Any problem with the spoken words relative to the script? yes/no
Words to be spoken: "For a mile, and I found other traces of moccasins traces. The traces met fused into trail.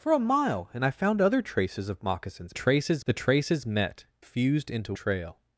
no